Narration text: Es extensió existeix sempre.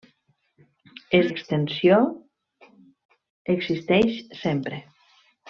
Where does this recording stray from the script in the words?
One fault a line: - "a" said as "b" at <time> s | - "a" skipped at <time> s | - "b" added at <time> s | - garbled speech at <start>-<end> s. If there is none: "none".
none